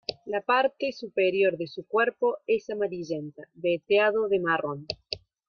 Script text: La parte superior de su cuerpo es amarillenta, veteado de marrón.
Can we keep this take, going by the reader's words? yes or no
yes